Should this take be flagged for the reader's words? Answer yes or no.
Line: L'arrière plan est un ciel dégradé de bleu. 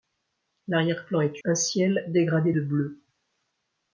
no